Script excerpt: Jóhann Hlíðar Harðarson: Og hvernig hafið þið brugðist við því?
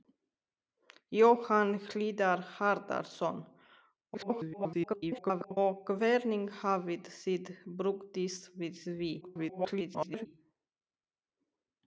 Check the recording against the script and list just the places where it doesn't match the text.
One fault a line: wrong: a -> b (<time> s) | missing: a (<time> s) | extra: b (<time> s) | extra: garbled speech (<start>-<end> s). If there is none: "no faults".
extra: garbled speech (4.1-5.6 s)
extra: garbled speech (9.2-10.3 s)